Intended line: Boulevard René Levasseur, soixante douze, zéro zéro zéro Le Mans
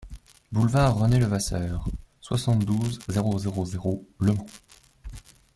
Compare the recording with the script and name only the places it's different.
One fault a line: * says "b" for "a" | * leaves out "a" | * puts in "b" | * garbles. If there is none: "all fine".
all fine